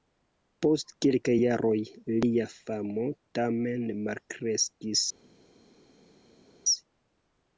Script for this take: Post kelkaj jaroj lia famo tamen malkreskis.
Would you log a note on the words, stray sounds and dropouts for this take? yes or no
no